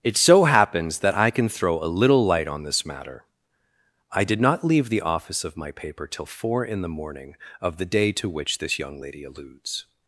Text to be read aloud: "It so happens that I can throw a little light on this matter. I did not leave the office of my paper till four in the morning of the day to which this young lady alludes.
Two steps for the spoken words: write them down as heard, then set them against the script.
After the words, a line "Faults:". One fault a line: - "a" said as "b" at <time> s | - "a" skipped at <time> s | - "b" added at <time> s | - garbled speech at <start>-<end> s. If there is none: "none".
"It so happens that I can throw a little light on this matter. I did not leave the office of my paper till four in the morning of the day to which this young lady alludes.
Faults:
none